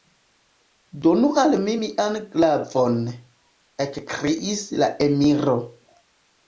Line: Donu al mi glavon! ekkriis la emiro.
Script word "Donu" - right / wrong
right